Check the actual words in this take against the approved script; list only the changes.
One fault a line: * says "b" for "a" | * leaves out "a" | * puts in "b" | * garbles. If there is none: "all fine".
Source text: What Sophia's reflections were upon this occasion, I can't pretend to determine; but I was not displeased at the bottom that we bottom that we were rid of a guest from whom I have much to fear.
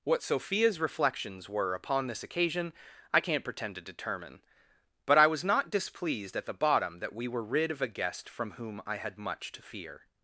* leaves out "bottom that we"
* says "had" for "have"